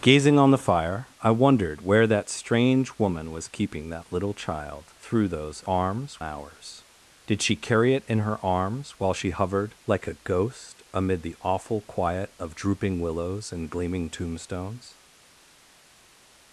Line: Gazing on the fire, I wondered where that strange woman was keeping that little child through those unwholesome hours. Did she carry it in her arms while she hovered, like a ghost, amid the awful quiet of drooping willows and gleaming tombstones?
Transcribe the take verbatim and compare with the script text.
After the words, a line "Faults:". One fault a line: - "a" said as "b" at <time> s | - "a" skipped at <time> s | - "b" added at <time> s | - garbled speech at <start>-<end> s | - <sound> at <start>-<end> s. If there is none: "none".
Gazing on the fire, I wondered where that strange woman was keeping that little child through those arms hours. Did she carry it in her arms while she hovered, like a ghost, amid the awful quiet of drooping willows and gleaming tombstones?
Faults:
- "unwholesome" said as "arms" at 5.7 s